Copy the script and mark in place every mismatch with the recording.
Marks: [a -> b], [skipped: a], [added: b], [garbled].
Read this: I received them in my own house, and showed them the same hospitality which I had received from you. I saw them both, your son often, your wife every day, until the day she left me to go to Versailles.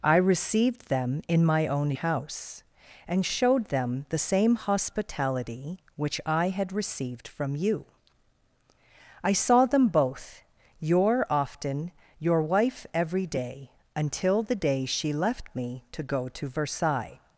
I received them in my own house, and showed them the same hospitality which I had received from you. I saw them both, your [skipped: son] often, your wife every day, until the day she left me to go to Versailles.